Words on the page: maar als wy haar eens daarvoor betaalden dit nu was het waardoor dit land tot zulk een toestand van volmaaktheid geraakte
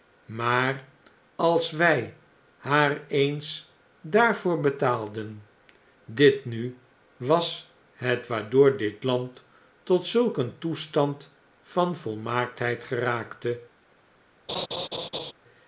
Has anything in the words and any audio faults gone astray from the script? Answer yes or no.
yes